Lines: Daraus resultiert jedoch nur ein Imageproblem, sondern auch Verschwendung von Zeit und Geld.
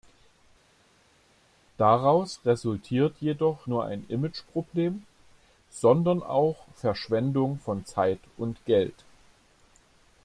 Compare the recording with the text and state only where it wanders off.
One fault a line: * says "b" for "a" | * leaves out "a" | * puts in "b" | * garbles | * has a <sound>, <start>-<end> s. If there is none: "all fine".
all fine